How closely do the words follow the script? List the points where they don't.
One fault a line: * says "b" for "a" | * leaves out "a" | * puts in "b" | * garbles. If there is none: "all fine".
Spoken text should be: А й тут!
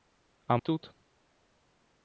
all fine